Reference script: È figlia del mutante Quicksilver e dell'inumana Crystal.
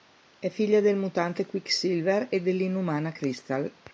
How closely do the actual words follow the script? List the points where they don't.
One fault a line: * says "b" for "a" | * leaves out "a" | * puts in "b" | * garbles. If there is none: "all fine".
all fine